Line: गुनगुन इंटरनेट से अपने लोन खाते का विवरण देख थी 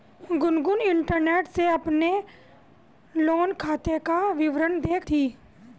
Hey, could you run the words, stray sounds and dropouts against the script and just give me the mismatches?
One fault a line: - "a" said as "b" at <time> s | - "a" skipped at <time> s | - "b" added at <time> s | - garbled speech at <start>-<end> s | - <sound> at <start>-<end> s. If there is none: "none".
none